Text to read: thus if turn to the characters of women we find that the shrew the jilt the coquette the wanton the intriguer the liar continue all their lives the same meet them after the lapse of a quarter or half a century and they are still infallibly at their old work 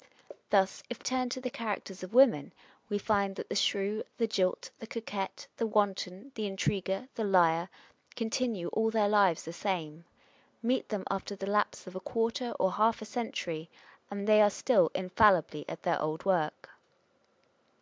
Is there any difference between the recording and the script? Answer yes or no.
no